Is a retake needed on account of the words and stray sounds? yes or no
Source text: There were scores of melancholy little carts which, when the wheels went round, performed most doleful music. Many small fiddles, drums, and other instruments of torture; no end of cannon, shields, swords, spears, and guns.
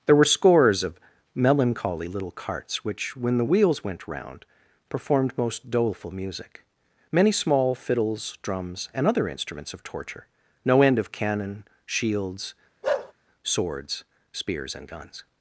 yes